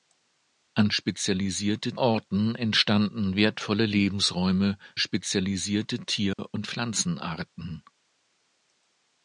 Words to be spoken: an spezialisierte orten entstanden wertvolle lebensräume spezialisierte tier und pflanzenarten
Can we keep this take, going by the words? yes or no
yes